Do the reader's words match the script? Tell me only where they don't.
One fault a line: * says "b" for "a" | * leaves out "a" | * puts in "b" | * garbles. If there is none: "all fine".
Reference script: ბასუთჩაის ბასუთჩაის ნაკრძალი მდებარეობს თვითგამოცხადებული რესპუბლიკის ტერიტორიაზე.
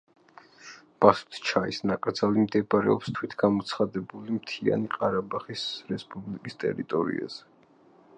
* leaves out "ბასუთჩაის"
* puts in "მთიანი ყარაბაღის"